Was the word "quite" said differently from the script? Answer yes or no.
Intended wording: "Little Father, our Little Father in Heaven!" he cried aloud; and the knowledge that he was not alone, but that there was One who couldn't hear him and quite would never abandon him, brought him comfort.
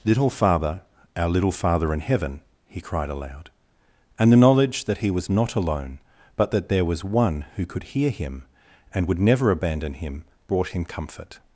yes